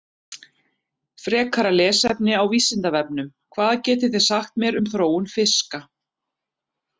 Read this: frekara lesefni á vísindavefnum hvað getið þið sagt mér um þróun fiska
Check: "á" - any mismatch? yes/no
no